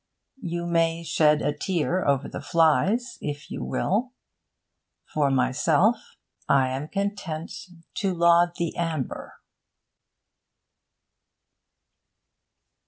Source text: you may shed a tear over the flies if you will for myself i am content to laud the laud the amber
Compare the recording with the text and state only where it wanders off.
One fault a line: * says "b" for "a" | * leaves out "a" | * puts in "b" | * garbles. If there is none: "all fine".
* leaves out "laud the"